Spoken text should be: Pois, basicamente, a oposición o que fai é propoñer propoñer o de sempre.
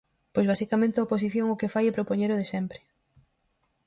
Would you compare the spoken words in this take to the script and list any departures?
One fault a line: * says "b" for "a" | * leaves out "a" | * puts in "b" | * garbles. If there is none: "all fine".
* leaves out "propoñer"